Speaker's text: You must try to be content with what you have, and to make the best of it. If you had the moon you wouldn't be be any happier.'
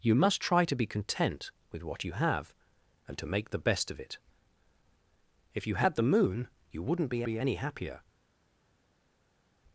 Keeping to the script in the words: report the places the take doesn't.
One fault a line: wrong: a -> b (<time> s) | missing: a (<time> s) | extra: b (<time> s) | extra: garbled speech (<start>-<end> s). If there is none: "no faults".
no faults